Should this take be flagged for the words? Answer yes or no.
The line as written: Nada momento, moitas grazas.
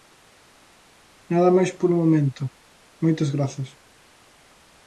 yes